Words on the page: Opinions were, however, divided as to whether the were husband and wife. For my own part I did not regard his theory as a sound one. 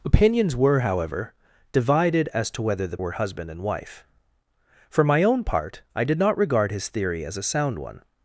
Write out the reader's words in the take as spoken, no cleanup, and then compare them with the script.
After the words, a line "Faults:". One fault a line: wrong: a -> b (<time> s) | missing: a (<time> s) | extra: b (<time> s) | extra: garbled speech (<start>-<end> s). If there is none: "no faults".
Opinions were, however, divided as to whether the were husband and wife. For my own part I did not regard his theory as a sound one.
Faults:
no faults